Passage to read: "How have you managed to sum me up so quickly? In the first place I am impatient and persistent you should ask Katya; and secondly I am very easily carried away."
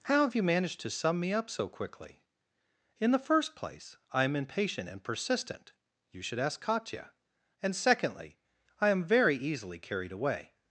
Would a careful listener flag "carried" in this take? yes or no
no